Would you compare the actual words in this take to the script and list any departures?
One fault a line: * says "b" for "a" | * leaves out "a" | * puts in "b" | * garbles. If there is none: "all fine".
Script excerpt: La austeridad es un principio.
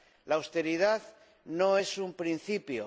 * puts in "no"